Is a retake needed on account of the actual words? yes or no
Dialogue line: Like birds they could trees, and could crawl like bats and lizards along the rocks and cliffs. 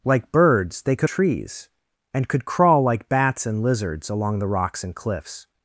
no